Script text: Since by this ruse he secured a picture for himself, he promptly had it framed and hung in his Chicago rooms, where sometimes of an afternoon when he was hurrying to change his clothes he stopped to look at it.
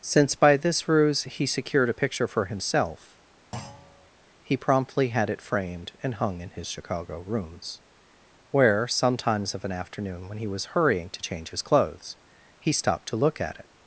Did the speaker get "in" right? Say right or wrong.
right